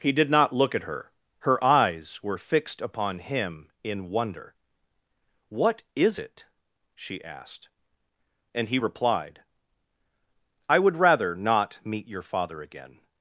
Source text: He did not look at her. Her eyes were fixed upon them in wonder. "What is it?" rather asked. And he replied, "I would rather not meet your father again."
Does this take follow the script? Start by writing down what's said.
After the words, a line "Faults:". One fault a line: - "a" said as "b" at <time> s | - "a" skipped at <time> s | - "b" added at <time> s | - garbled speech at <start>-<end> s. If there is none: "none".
He did not look at her. Her eyes were fixed upon him in wonder. "What is it?" she asked. And he replied, "I would rather not meet your father again."
Faults:
- "them" said as "him" at 3.2 s
- "rather" said as "she" at 6.9 s